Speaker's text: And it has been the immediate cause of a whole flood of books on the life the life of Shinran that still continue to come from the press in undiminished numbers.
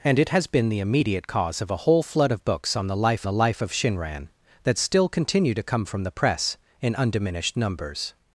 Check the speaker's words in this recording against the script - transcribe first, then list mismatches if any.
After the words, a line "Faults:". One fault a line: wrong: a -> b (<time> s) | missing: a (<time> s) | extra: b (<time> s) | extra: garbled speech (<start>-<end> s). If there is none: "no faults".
And it has been the immediate cause of a whole flood of books on the life the life of Shinran that still continue to come from the press in undiminished numbers.
Faults:
no faults